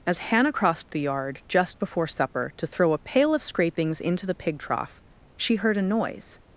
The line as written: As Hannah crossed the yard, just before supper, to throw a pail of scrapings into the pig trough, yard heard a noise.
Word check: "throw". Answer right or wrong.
right